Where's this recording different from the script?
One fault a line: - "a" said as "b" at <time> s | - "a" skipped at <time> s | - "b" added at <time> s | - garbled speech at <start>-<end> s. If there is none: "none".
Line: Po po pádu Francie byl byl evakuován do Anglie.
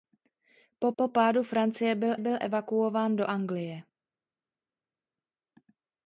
none